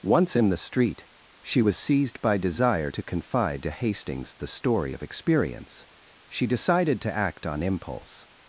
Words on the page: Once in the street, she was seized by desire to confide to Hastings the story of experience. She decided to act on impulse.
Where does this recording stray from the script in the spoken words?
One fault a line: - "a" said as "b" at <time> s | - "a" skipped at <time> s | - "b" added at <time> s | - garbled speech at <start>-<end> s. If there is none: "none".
none